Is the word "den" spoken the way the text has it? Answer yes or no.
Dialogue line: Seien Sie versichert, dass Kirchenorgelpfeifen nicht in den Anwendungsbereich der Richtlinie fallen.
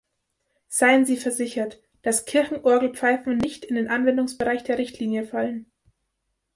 yes